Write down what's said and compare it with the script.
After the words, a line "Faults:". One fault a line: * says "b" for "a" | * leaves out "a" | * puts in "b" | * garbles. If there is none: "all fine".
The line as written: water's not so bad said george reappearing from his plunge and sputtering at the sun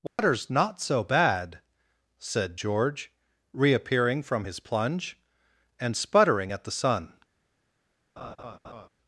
water's not so bad said george reappearing from his plunge and sputtering at the sun
Faults:
all fine